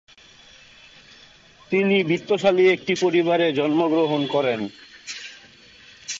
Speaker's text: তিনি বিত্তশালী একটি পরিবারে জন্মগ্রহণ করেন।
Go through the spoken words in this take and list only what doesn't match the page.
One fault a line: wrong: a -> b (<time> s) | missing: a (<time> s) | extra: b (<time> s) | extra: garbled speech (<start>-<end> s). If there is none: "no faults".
no faults